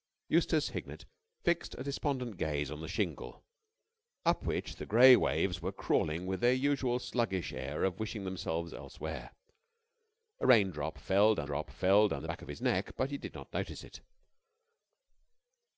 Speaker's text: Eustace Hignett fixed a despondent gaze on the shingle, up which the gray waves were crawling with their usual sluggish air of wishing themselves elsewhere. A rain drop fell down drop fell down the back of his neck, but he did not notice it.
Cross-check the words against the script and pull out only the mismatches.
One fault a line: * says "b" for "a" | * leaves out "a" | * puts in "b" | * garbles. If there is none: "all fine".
all fine